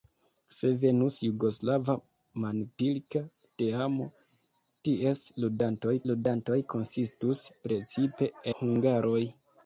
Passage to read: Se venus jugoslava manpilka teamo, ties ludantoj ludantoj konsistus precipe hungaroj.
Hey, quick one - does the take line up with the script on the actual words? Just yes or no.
yes